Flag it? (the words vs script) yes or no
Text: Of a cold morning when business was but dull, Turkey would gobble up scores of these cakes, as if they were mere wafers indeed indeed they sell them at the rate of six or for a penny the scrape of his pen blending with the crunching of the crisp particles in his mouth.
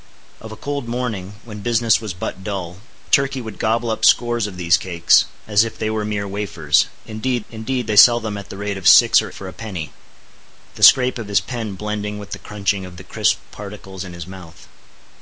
no